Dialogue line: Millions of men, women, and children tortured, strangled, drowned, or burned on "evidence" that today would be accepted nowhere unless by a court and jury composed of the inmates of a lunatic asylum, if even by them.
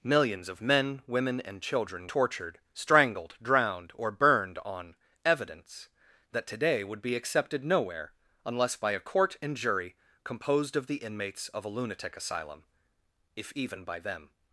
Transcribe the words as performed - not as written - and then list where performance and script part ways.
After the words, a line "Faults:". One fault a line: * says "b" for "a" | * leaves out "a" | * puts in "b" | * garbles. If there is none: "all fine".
Millions of men, women, and children tortured, strangled, drowned, or burned on "evidence" that today would be accepted nowhere unless by a court and jury composed of the inmates of a lunatic asylum, if even by them.
Faults:
all fine